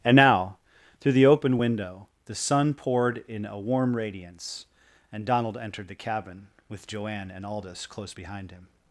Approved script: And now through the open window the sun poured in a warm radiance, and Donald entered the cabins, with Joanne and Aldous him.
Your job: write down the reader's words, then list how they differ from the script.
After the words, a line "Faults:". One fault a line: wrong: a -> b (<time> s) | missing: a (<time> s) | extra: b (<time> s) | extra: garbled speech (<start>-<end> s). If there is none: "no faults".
And now through the open window the sun poured in a warm radiance, and Donald entered the cabin, with Joanne and Aldous close behind him.
Faults:
wrong: cabins -> cabin (5.9 s)
extra: close behind (7.9 s)